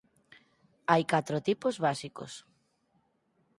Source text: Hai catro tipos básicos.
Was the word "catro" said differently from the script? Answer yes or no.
no